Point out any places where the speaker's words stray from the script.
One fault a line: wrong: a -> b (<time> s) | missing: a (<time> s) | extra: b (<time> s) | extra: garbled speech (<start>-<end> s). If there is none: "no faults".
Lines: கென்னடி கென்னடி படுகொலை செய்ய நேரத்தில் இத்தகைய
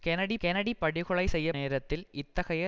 no faults